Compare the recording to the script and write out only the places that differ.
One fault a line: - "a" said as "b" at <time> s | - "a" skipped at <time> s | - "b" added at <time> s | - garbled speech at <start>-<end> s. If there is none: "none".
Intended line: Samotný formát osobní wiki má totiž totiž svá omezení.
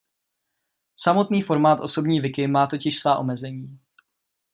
- "totiž" skipped at 3.0 s